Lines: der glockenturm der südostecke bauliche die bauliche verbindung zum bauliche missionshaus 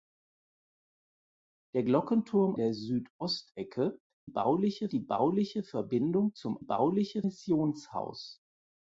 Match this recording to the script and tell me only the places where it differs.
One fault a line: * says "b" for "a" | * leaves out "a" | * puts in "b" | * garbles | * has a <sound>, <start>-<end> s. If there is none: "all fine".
all fine